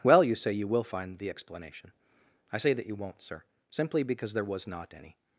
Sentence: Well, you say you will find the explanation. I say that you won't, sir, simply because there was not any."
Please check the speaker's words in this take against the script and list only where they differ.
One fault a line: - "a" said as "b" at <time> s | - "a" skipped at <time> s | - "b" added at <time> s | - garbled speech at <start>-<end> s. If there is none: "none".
none